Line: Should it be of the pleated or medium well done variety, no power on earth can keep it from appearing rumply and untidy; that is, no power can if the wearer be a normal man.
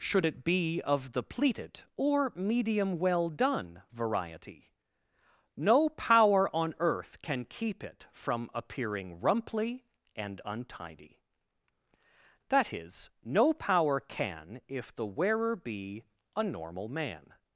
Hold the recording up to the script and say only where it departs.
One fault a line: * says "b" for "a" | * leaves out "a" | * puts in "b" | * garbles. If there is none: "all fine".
all fine